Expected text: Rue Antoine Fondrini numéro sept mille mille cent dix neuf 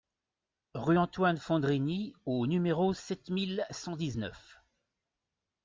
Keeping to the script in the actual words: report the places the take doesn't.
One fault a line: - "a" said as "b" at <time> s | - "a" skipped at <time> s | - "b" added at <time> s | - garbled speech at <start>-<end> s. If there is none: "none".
- "au" added at 2.2 s
- "mille" skipped at 3.7 s